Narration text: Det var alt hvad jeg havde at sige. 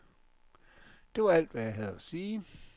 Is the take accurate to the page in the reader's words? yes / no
yes